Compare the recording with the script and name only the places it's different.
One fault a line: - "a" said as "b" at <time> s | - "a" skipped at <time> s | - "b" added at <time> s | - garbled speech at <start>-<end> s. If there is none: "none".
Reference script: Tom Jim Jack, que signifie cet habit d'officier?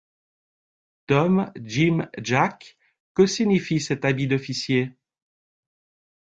none